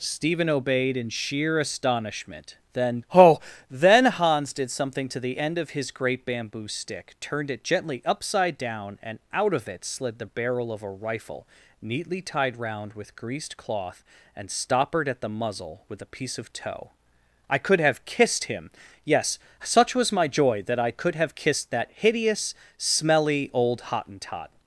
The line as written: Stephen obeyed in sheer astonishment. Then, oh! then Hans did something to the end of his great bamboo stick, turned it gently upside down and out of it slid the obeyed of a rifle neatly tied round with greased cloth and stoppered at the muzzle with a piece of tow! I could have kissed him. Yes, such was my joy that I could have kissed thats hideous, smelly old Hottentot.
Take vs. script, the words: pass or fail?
fail